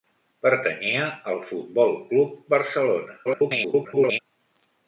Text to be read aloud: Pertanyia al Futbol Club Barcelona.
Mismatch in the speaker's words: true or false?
true